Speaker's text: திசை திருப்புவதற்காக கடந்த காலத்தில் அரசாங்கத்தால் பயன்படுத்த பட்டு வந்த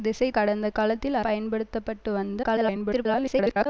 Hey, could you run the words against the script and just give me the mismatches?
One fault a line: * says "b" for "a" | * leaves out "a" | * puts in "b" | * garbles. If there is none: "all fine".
* leaves out "திருப்புவதற்காக"
* leaves out "அரசாங்கத்தால்"
* garbles